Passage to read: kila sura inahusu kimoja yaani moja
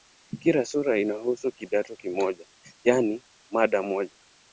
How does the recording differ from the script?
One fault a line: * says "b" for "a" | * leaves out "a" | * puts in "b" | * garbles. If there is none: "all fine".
* puts in "kidato"
* puts in "mada"